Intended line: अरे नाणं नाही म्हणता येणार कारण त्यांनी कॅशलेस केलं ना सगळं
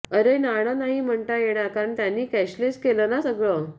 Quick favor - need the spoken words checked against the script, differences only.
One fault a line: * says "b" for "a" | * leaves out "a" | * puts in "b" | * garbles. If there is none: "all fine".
all fine